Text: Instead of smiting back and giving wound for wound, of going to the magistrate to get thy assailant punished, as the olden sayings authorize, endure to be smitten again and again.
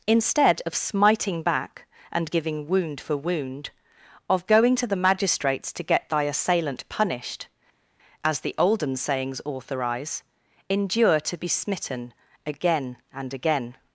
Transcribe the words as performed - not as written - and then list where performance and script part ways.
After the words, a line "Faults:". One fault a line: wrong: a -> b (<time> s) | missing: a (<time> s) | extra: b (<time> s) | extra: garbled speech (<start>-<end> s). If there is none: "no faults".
Instead of smiting back and giving wound for wound, of going to the magistrates to get thy assailant punished, as the olden sayings authorize, endure to be smitten again and again.
Faults:
wrong: magistrate -> magistrates (5.0 s)